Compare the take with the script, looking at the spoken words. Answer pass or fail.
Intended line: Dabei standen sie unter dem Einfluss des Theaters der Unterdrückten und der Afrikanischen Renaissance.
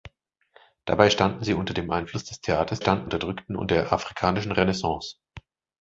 fail